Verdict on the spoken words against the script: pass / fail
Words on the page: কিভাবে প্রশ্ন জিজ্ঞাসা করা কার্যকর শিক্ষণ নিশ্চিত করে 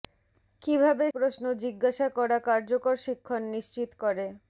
pass